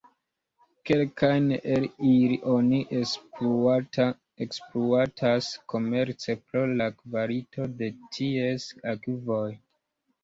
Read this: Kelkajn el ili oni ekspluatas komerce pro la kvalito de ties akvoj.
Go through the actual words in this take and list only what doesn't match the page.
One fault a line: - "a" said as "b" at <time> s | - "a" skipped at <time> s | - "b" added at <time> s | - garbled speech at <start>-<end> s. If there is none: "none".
none